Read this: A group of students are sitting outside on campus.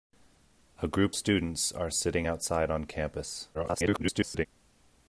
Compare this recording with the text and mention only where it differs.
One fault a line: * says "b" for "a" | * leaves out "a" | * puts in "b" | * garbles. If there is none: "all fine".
* leaves out "of"
* garbles